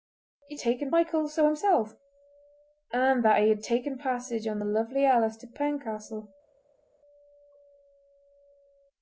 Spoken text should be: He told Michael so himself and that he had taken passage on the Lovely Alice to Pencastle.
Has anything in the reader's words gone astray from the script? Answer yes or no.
yes